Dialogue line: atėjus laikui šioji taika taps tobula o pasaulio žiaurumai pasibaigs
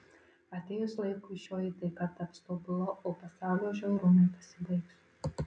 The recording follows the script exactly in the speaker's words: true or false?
true